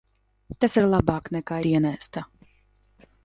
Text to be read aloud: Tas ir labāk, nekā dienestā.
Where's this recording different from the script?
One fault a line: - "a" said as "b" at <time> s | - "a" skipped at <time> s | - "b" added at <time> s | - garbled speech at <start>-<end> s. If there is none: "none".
none